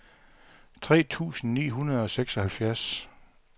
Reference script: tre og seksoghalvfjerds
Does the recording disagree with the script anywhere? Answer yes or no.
yes